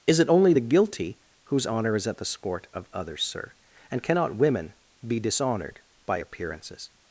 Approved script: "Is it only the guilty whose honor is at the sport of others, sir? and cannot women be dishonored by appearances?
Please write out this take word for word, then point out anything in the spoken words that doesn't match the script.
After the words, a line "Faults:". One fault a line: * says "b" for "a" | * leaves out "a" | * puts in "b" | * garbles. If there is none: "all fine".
"Is it only the guilty whose honor is at the sport of others, sir? and cannot women be dishonored by appearances?
Faults:
all fine